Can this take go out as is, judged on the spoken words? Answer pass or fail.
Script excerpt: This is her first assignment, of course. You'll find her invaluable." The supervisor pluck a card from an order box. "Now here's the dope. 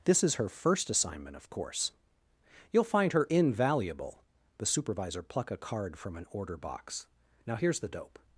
pass